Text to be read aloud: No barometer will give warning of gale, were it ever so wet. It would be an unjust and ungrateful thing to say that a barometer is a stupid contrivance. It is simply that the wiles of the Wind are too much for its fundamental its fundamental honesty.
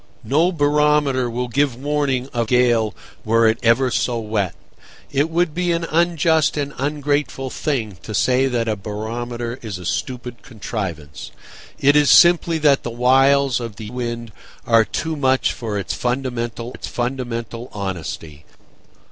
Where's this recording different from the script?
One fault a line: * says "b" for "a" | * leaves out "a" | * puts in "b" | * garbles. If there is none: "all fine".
all fine